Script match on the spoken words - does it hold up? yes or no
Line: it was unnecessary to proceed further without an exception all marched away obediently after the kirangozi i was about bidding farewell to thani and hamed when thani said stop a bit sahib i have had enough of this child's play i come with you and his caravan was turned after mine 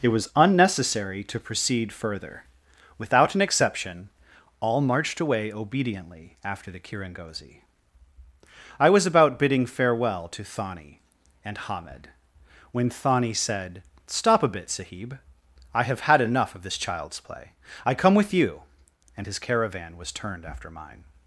yes